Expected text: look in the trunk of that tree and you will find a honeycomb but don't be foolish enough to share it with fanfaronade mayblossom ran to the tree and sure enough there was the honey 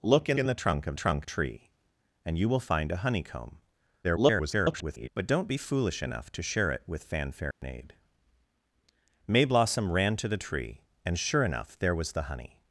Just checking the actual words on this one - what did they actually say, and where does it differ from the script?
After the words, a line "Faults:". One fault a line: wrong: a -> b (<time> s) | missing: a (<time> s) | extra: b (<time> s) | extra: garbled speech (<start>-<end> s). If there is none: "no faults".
look in in the trunk of trunk tree and you will find a honeycomb [garbled] but don't be foolish enough to share it with fanfaronade mayblossom ran to the tree and sure enough there was the honey
Faults:
extra: in (0.4 s)
wrong: that -> trunk (0.9 s)
extra: garbled speech (4.0-5.1 s)